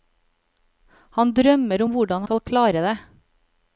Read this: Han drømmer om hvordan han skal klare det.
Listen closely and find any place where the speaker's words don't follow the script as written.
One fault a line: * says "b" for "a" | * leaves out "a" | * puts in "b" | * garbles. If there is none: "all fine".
* leaves out "han"